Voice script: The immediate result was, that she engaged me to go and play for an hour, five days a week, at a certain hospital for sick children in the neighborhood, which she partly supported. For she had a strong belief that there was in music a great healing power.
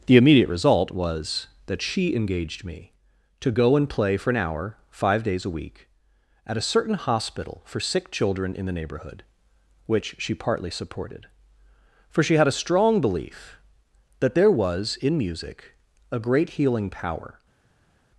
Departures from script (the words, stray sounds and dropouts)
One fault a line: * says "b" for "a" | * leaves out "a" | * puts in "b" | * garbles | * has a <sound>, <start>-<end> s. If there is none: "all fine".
all fine